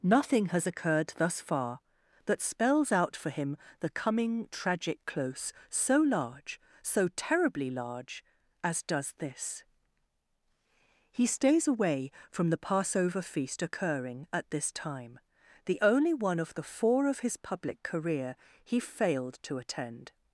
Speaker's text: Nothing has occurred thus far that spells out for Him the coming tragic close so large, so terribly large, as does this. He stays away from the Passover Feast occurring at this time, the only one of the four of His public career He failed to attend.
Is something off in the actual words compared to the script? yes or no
no